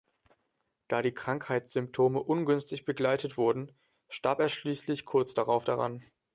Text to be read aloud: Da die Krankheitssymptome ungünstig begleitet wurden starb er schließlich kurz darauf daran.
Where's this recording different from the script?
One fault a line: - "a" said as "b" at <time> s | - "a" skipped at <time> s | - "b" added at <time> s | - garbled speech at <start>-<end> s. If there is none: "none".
none